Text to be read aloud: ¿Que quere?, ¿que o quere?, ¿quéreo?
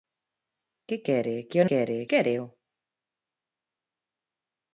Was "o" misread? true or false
false